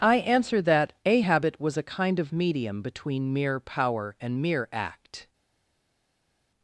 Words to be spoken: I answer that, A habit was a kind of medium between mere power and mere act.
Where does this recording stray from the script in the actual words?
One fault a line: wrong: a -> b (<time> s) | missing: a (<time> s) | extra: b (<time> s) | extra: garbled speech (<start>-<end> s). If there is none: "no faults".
no faults